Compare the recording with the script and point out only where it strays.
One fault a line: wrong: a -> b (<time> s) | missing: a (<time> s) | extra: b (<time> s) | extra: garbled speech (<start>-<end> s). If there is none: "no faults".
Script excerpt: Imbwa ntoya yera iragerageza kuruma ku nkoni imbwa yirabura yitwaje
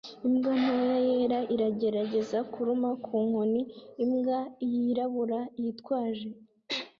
no faults